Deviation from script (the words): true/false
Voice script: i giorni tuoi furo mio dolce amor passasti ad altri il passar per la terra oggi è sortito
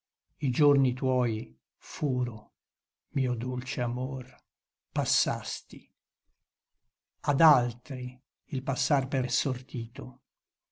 true